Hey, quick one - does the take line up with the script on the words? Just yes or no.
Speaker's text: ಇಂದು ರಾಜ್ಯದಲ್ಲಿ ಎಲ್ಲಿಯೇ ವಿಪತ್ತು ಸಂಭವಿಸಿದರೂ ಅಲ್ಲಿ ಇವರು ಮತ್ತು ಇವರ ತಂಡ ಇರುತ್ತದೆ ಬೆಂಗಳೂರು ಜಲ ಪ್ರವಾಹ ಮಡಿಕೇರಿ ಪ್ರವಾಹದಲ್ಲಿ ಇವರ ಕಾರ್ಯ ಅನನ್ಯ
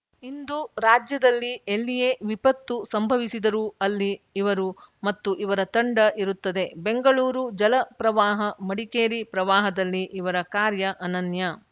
yes